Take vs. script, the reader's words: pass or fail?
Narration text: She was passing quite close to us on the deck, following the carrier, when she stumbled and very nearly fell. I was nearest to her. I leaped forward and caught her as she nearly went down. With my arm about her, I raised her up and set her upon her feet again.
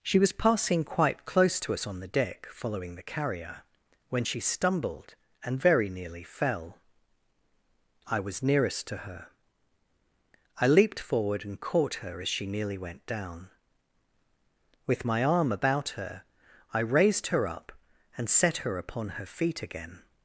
pass